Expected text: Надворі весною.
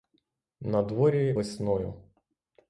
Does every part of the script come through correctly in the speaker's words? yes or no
yes